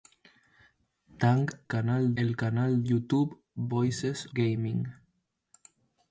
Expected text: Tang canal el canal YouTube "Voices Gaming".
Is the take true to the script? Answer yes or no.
yes